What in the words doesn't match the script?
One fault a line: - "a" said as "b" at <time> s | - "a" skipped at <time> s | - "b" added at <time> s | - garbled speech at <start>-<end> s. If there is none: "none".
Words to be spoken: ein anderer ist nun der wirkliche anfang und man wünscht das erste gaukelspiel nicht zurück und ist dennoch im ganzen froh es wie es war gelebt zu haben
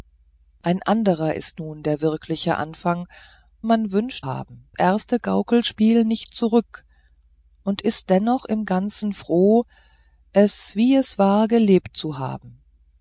- "und" skipped at 3.1 s
- "das" said as "haben" at 4.2 s